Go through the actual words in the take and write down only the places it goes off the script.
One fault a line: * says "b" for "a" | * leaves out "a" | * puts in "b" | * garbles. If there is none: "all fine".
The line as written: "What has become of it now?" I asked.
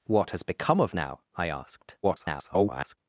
* leaves out "it"
* garbles